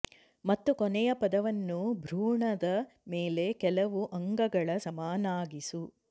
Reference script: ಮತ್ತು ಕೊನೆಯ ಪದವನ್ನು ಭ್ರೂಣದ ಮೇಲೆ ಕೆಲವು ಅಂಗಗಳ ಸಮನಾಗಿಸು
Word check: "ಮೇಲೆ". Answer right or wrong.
right